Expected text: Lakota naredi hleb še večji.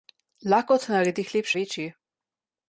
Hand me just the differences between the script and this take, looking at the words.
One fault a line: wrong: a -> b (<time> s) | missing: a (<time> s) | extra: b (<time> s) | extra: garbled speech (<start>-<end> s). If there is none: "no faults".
missing: še (1.5 s)